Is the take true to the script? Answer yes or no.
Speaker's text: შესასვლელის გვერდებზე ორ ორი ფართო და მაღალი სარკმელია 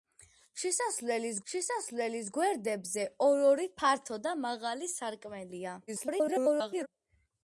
no